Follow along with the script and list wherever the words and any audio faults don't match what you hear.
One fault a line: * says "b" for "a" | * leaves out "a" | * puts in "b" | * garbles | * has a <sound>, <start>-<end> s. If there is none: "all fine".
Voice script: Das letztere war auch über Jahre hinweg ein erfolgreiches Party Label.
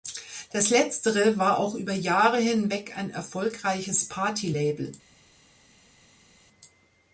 all fine